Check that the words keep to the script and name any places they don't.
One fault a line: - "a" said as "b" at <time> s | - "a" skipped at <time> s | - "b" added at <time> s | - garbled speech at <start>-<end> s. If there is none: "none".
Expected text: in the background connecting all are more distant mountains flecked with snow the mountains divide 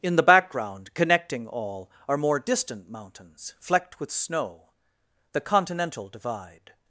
- "mountains" said as "continental" at 5.4 s